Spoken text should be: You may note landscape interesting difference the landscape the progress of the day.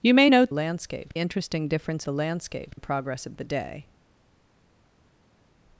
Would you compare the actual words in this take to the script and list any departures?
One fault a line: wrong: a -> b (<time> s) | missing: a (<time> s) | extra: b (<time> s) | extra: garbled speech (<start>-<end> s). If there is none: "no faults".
no faults